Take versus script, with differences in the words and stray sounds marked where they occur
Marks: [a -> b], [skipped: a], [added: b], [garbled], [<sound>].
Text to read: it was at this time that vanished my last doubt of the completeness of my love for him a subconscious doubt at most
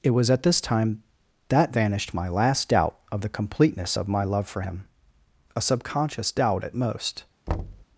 it was at this time that vanished my last doubt of the completeness of my love for him a subconscious doubt at most [thud]